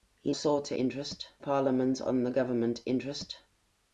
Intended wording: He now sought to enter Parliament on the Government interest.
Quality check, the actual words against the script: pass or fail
fail